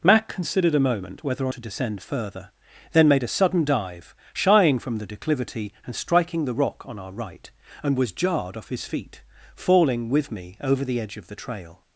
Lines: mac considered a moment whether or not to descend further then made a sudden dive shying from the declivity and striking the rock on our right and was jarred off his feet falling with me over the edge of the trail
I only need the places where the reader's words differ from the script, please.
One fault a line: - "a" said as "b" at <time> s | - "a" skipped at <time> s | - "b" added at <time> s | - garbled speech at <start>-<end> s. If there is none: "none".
- "not" skipped at 1.5 s